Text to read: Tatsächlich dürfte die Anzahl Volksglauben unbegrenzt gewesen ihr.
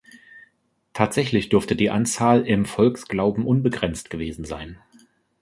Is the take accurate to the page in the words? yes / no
no